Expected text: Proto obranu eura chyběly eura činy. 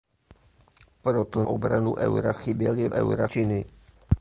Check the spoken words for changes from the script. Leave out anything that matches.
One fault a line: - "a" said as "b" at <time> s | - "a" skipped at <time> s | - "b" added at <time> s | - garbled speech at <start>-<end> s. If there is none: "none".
none